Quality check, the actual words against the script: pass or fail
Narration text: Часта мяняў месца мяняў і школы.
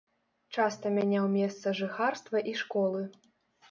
fail